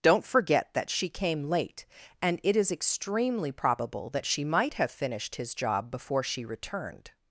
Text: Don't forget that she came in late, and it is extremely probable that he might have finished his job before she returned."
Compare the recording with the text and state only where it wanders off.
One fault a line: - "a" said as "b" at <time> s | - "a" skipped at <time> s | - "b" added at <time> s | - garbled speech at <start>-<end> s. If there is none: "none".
- "in" skipped at 1.4 s
- "he" said as "she" at 4.2 s